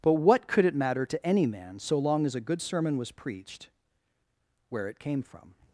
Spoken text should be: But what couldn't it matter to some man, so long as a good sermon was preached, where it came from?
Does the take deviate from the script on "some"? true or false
true